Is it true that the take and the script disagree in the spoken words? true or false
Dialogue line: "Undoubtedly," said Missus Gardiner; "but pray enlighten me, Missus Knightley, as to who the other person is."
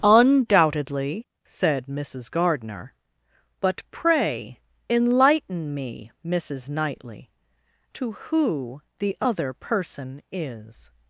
true